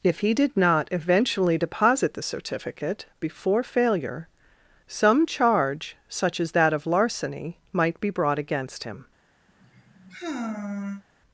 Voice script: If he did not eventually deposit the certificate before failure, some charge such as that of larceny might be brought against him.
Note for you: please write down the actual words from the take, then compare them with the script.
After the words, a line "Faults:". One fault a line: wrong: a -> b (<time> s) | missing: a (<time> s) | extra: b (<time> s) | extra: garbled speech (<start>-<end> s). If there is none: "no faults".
If he did not eventually deposit the certificate before failure, some charge such as that of larceny might be brought against him.
Faults:
no faults